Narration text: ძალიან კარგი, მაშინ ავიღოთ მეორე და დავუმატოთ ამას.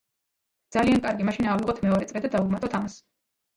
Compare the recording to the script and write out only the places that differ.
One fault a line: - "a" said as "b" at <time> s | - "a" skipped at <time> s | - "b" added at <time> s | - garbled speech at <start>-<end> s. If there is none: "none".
- "წრე" added at 2.1 s